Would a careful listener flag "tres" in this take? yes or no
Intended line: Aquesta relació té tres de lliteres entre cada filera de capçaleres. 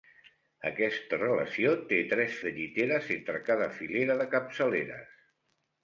no